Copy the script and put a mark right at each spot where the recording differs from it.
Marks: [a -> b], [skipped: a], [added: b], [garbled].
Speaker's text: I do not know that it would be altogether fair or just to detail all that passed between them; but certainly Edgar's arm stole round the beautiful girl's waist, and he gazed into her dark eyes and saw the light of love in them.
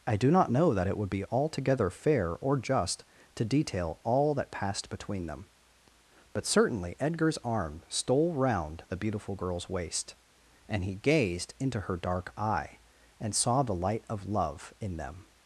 I do not know that it would be altogether fair or just to detail all that passed between them; but certainly Edgar's arm stole round the beautiful girl's waist, and he gazed into her dark [eyes -> eye] and saw the light of love in them.